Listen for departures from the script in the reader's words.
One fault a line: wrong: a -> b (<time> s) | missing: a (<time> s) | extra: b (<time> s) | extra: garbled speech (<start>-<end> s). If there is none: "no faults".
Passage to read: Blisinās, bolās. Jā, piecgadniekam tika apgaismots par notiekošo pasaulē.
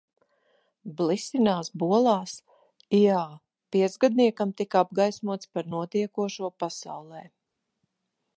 no faults